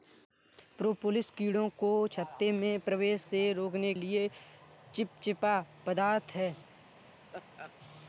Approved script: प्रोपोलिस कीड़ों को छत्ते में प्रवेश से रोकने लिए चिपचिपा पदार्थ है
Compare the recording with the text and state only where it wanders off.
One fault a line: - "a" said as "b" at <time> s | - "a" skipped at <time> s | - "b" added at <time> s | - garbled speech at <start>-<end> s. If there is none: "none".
none